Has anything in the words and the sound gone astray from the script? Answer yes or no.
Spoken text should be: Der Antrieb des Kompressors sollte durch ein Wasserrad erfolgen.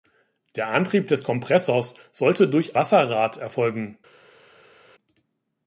yes